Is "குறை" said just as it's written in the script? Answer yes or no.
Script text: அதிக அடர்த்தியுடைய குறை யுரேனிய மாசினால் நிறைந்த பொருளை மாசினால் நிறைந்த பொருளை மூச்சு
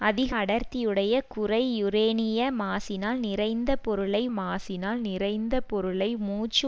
yes